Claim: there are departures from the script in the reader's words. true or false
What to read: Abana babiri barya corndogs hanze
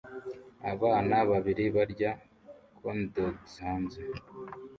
false